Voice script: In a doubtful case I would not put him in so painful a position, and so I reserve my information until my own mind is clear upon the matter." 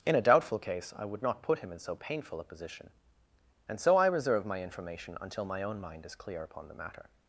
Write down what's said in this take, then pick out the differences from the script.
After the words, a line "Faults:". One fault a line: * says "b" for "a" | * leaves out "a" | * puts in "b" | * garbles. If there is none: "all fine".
In a doubtful case I would not put him in so painful a position, and so I reserve my information until my own mind is clear upon the matter."
Faults:
all fine